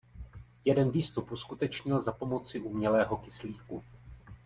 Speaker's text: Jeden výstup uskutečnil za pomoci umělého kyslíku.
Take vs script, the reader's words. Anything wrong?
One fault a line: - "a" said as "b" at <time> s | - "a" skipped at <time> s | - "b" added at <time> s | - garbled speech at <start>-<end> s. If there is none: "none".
none